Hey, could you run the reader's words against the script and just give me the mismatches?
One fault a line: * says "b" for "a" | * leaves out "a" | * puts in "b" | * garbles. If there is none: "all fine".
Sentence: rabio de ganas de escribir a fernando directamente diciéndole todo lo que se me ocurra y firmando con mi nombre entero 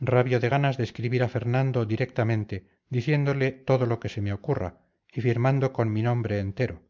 all fine